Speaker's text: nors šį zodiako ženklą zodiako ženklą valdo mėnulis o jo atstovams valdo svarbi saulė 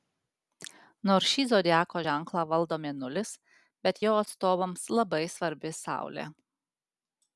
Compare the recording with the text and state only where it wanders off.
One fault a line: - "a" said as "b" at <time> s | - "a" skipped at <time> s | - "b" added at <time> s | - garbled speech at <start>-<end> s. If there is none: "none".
- "zodiako ženklą" skipped at 2.4 s
- "o" said as "bet" at 3.9 s
- "valdo" said as "labai" at 5.0 s